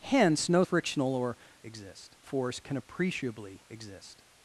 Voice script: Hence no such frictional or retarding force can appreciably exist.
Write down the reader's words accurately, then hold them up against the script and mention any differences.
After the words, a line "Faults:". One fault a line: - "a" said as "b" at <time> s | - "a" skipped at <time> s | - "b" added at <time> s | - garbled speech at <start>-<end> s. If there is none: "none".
Hence no frictional or exist force can appreciably exist.
Faults:
- "such" skipped at 0.6 s
- "retarding" said as "exist" at 1.6 s